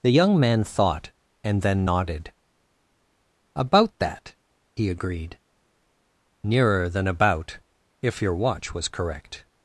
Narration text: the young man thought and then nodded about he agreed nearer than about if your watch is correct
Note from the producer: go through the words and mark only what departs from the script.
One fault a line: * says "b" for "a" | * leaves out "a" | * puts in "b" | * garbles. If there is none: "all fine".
* puts in "that"
* says "was" for "is"